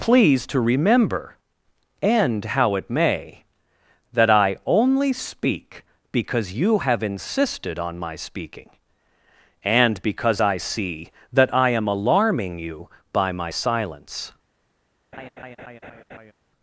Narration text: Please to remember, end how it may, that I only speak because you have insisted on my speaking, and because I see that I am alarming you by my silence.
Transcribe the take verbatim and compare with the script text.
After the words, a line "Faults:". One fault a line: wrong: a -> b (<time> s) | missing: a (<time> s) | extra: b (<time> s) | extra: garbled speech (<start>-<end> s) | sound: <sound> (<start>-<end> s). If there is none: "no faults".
Please to remember, end how it may, that I only speak because you have insisted on my speaking, and because I see that I am alarming you by my silence.
Faults:
sound: laugh (15.1-16.3 s)